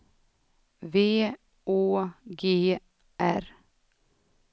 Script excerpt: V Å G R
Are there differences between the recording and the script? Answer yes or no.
no